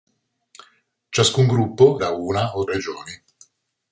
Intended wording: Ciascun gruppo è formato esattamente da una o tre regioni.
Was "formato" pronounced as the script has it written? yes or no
no